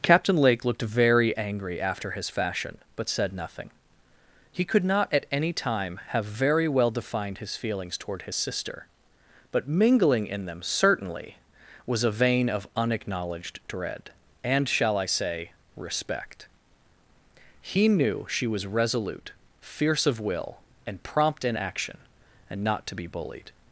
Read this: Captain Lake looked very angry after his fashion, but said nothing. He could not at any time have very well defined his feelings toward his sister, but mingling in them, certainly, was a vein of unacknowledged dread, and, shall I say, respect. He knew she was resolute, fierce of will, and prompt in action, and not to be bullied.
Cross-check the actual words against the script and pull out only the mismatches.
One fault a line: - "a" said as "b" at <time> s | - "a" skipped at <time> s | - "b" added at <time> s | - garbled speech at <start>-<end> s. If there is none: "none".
none